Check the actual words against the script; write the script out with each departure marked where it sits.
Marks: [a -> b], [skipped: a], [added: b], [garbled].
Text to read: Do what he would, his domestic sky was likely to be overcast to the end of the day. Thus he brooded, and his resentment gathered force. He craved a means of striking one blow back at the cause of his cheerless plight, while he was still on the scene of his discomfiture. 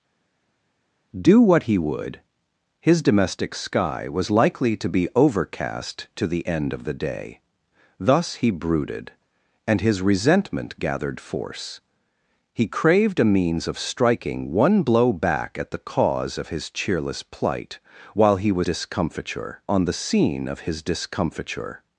Do what he would, his domestic sky was likely to be overcast to the end of the day. Thus he brooded, and his resentment gathered force. He craved a means of striking one blow back at the cause of his cheerless plight, while he was [still -> discomfiture] on the scene of his discomfiture.